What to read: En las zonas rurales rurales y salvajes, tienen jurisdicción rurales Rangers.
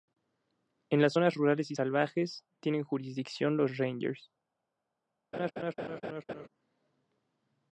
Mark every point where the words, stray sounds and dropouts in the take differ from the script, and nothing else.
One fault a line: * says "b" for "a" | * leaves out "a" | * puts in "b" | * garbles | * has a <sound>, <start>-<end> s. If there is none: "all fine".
* leaves out "rurales"
* says "los" for "rurales"
* has a laugh, 5.3-6.5 s